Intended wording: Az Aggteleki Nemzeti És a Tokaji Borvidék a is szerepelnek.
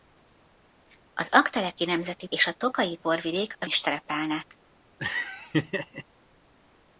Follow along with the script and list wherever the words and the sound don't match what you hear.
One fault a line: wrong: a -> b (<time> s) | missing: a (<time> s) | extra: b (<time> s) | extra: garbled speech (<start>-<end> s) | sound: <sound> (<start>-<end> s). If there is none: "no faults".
sound: laugh (5.0-6.0 s)